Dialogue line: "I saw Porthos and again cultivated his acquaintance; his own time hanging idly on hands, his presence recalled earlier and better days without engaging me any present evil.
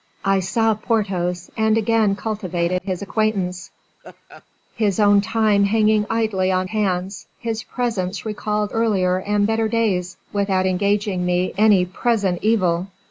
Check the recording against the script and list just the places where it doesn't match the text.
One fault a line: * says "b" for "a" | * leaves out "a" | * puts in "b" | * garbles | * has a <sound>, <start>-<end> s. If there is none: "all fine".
* has a laugh, 4.0-4.5 s